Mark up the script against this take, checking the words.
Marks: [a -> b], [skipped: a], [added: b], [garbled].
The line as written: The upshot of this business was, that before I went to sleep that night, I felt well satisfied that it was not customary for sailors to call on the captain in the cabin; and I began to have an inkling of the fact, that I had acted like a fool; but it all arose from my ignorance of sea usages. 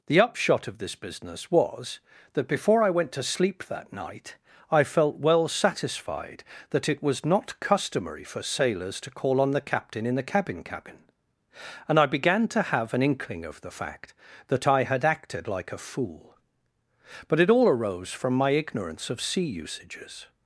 The upshot of this business was, that before I went to sleep that night, I felt well satisfied that it was not customary for sailors to call on the captain in the cabin; [added: cabin] and I began to have an inkling of the fact, that I had acted like a fool; but it all arose from my ignorance of sea usages.